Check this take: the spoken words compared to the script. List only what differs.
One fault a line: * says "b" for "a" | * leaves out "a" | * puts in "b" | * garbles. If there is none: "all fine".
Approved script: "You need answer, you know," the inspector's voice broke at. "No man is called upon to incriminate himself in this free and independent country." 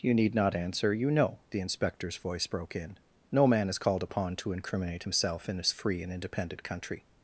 * puts in "not"
* says "in" for "at"